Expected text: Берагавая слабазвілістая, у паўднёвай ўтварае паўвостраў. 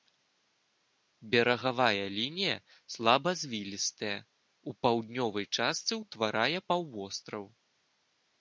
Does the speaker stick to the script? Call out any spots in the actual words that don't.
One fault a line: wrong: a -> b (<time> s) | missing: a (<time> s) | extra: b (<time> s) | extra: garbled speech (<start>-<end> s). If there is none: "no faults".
extra: лінія (2.2 s)
extra: частцы (5.6 s)